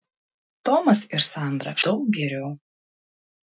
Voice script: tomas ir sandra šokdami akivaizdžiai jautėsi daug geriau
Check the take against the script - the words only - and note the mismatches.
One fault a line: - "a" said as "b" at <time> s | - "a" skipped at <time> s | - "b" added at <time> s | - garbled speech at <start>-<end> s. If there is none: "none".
- "šokdami akivaizdžiai jautėsi" skipped at 1.7 s